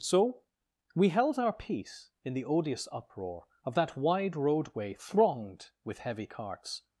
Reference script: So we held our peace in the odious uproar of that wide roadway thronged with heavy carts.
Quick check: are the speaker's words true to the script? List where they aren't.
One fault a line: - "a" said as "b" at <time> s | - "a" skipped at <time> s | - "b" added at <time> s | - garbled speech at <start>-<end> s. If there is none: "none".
none